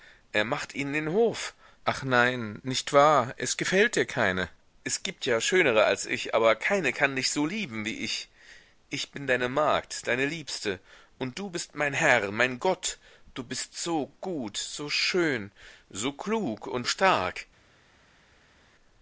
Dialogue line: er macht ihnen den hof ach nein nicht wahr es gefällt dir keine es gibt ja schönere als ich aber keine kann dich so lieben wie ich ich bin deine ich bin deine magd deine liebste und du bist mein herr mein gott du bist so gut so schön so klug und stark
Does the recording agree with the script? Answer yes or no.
no